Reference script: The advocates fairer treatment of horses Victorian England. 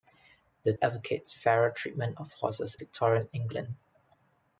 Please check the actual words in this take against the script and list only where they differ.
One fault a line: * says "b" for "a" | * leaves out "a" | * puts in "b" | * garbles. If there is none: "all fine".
all fine